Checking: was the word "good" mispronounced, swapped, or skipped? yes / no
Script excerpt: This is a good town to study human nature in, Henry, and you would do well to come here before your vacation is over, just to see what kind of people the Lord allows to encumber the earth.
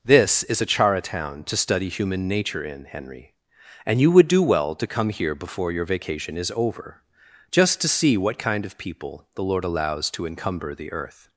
yes